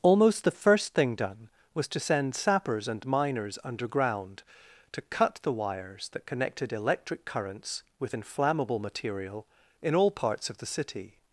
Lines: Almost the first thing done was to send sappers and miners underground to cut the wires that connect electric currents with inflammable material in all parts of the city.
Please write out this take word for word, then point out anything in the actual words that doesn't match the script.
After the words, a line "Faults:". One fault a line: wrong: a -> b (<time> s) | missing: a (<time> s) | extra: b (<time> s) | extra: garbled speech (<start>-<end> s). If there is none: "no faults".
Almost the first thing done was to send sappers and miners underground to cut the wires that connected electric currents with inflammable material in all parts of the city.
Faults:
wrong: connect -> connected (6.2 s)